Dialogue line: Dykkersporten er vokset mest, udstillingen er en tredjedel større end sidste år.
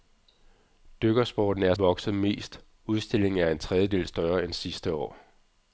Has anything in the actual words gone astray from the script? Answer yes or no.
no